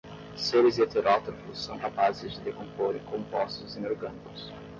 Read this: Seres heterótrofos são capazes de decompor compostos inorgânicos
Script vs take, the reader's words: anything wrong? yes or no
no